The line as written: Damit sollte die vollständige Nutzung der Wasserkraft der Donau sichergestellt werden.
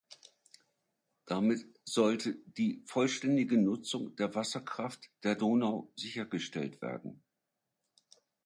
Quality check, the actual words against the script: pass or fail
pass